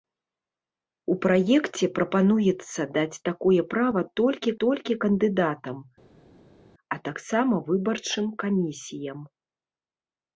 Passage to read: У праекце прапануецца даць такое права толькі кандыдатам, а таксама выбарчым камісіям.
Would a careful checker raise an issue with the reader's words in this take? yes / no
yes